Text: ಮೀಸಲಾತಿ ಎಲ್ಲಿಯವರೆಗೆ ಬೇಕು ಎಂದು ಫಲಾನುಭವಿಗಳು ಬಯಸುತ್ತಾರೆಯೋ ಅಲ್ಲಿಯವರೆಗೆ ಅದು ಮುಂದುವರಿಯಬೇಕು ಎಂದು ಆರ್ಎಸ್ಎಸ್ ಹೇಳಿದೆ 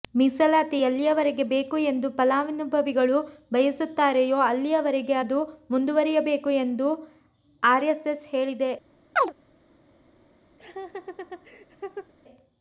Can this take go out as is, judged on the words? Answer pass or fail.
pass